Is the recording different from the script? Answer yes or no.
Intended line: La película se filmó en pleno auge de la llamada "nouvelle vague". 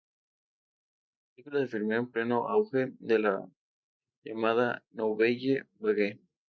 no